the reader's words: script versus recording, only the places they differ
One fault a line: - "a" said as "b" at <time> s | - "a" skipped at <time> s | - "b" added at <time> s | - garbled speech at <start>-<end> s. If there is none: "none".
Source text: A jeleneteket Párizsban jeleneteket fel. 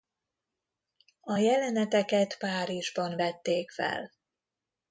- "jeleneteket" said as "vették" at 3.2 s